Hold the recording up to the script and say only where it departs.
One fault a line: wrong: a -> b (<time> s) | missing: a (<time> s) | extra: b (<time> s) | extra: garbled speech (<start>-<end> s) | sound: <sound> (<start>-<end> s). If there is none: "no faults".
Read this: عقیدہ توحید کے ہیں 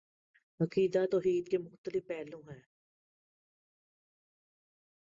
extra: مختلف پہلو (1.6 s)